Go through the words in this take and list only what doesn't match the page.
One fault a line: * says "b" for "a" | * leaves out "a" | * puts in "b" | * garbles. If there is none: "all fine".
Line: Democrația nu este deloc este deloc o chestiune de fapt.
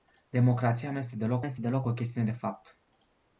all fine